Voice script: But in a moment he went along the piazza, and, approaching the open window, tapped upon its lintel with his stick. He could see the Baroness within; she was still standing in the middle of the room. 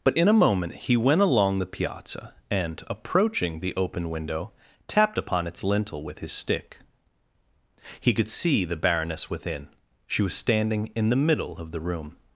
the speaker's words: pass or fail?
fail